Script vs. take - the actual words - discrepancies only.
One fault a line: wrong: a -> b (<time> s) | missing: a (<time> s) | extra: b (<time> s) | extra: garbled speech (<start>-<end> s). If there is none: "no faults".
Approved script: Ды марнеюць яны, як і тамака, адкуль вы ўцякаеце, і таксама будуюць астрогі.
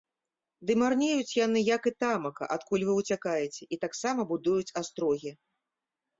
no faults